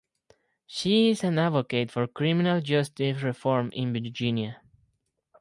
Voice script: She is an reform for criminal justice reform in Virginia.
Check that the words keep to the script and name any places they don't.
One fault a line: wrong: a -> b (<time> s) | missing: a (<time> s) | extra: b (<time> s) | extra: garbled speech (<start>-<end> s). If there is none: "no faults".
wrong: reform -> advocate (1.4 s)